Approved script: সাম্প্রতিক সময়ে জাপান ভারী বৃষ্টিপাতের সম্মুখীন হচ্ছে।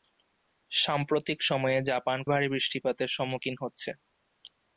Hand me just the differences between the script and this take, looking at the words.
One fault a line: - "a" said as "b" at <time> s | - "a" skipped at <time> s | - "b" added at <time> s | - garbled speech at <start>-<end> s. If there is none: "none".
none